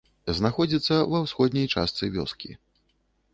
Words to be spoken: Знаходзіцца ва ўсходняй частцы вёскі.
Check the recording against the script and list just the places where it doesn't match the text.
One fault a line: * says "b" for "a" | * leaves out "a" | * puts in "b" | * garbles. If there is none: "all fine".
all fine